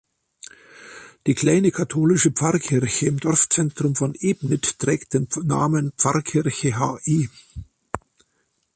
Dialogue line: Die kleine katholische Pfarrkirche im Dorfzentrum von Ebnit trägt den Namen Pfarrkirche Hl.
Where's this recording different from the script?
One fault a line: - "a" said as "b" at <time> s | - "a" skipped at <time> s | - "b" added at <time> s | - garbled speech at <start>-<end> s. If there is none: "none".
none